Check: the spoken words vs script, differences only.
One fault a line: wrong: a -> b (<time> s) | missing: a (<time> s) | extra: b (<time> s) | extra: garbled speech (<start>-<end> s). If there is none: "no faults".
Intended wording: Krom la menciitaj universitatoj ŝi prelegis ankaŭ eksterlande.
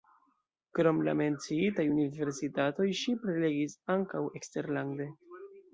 no faults